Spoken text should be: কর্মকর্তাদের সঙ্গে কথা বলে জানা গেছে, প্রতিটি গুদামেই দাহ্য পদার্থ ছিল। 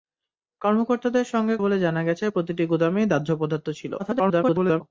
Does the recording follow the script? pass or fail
fail